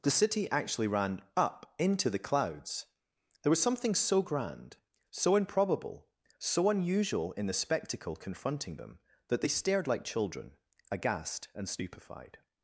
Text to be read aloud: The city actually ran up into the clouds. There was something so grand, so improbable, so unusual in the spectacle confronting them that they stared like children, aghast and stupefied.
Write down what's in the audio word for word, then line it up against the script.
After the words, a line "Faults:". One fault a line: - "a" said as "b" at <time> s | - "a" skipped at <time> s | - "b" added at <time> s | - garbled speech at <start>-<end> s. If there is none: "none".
The city actually ran up into the clouds. There was something so grand, so improbable, so unusual in the spectacle confronting them that they stared like children, aghast and stupefied.
Faults:
none